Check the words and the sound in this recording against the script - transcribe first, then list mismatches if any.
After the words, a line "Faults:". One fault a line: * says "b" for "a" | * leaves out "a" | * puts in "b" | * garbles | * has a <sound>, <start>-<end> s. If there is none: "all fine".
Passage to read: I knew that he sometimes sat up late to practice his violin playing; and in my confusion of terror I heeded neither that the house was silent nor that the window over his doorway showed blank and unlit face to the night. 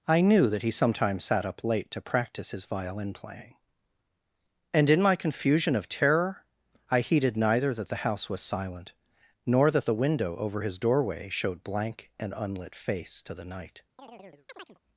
I knew that he sometimes sat up late to practice his violin playing; and in my confusion of terror I heeded neither that the house was silent nor that the window over his doorway showed blank and unlit face to the night.
Faults:
* has a chirp, 14.0-14.8 s